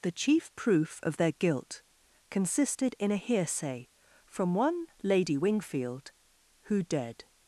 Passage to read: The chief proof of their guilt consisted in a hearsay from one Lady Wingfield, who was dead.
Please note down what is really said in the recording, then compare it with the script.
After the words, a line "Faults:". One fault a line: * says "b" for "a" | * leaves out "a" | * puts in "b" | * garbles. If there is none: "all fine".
The chief proof of their guilt consisted in a hearsay from one Lady Wingfield, who dead.
Faults:
* leaves out "was"